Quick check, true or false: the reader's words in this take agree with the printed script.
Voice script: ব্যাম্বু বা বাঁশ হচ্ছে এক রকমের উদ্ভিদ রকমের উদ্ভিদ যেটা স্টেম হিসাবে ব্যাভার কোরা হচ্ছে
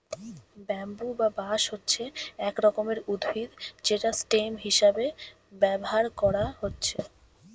false